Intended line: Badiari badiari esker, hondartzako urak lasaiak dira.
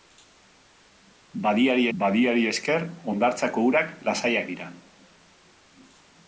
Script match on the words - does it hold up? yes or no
yes